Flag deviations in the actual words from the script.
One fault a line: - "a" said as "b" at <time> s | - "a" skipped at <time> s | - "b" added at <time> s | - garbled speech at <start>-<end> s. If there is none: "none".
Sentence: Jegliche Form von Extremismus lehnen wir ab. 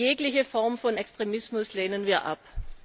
none